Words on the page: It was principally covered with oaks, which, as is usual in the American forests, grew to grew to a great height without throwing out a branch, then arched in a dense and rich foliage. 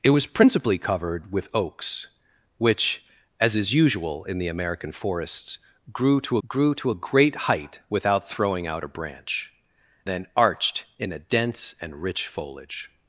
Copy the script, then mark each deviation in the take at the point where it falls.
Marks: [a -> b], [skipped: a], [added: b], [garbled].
It was principally covered with oaks, which, as is usual in the American forests, grew to grew to a great height without throwing out a branch, then arched in a dense and rich foliage.